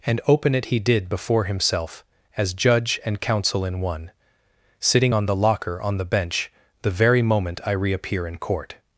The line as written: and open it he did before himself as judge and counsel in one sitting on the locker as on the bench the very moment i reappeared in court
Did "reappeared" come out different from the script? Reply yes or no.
yes